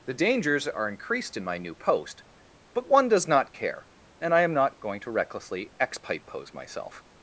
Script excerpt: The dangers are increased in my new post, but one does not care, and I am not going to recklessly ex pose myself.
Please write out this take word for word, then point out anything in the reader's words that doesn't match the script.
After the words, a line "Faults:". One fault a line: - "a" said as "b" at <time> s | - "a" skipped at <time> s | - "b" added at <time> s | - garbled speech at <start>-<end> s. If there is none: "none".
The dangers are increased in my new post, but one does not care, and I am not going to recklessly x pipe pose myself.
Faults:
- "ex" said as "x pipe" at 5.8 s